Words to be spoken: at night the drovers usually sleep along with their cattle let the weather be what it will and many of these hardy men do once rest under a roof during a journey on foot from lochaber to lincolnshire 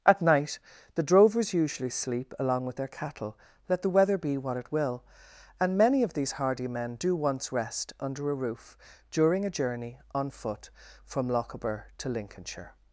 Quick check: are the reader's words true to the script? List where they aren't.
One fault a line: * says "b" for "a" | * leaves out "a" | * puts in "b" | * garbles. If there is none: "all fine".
all fine